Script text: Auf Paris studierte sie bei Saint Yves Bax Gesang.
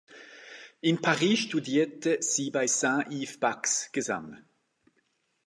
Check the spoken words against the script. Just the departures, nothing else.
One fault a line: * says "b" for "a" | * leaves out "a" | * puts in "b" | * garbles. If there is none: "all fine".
* says "In" for "Auf"